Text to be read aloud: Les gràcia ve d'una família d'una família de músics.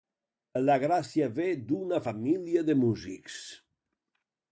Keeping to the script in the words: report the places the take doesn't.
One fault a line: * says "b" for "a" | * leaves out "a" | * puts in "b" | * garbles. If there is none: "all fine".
* says "La" for "Les"
* leaves out "d'una família"